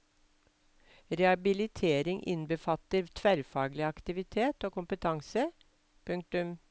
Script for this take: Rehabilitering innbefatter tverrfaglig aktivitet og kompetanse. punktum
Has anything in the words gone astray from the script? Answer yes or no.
no